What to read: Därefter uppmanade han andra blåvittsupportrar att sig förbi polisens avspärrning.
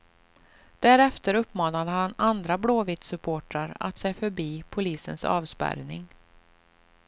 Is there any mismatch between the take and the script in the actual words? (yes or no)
no